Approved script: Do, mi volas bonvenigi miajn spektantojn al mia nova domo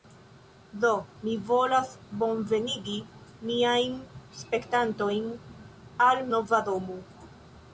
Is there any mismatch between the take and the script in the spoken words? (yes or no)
yes